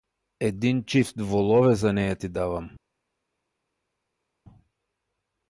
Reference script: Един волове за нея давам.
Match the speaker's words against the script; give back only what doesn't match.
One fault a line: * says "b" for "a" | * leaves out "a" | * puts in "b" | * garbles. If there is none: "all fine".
* puts in "чифт"
* puts in "ти"